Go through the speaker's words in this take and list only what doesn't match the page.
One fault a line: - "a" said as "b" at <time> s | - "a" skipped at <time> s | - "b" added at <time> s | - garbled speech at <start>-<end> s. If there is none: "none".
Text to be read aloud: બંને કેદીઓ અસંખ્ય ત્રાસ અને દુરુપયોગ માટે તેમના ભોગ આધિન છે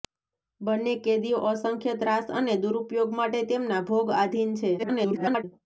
- garbled speech at 4.8-5.4 s